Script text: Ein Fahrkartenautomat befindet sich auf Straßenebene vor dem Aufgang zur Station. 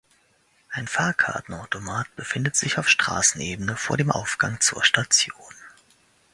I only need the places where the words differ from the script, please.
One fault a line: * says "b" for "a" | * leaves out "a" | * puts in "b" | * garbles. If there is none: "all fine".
all fine